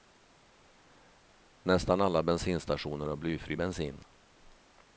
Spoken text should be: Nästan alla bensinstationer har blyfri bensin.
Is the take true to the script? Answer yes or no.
yes